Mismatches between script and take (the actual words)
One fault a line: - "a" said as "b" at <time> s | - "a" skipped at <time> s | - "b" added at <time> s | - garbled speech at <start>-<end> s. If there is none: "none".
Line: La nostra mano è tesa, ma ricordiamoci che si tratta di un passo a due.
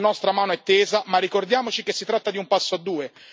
none